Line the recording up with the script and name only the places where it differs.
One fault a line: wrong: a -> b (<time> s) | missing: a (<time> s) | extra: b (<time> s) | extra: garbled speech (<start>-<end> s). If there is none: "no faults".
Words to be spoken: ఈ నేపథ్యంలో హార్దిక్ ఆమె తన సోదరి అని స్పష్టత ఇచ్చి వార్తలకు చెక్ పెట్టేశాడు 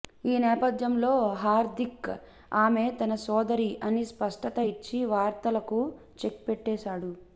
no faults